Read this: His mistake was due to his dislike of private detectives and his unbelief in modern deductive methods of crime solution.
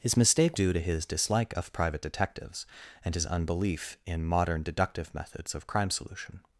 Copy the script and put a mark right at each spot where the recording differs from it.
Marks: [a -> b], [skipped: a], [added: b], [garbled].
His mistake [skipped: was] due to his dislike of private detectives and his unbelief in modern deductive methods of crime solution.